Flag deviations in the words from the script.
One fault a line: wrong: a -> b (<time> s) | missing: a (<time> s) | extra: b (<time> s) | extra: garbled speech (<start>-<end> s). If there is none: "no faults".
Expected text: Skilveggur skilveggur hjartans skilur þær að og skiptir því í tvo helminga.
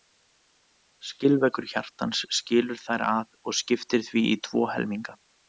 missing: skilveggur (1.7 s)